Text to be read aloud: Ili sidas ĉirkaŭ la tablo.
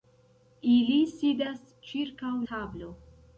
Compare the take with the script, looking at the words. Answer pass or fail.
fail